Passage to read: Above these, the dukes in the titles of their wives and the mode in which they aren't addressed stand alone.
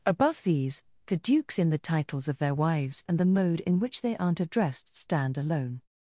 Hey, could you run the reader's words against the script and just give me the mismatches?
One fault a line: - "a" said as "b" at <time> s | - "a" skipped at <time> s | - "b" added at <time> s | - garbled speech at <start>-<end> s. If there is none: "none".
none